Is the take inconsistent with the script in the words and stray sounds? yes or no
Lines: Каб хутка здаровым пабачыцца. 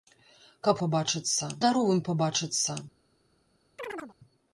yes